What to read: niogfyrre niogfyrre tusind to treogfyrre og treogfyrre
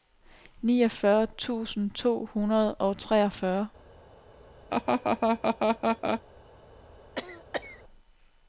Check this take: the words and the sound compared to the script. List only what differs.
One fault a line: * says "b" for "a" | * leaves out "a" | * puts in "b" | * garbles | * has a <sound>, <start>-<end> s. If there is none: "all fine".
* leaves out "niogfyrre"
* says "hundrede" for "treogfyrre"
* has a laugh, 4.7-6.2 s
* has a cough, 7.2-7.8 s